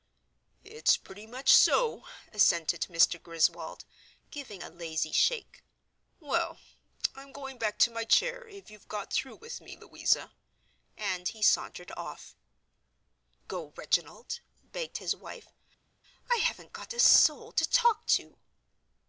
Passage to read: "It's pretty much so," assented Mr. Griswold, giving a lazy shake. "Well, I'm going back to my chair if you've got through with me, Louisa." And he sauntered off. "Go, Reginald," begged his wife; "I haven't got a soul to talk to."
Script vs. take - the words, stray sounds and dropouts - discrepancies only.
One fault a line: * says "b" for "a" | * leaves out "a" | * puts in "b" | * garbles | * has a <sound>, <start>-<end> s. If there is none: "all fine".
all fine